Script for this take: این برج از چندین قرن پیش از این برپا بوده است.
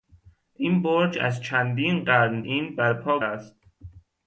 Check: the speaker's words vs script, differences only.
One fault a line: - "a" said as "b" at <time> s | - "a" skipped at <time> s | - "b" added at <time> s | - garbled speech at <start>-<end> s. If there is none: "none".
- "پیش از" skipped at 2.4 s
- "بوده" skipped at 3.2 s